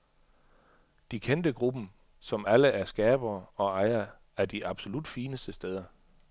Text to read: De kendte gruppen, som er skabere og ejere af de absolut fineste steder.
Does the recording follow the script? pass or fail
fail